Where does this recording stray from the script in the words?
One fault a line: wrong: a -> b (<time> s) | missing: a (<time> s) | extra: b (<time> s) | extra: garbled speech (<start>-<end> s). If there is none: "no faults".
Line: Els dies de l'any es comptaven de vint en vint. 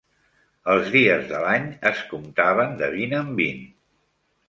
no faults